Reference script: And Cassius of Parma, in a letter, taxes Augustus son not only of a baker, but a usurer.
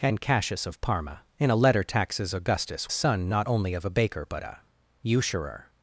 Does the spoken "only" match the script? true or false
true